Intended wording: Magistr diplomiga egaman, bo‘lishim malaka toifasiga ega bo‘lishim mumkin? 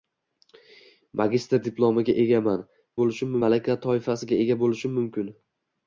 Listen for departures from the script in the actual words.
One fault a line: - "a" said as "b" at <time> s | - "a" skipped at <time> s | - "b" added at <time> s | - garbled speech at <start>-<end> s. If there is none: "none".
none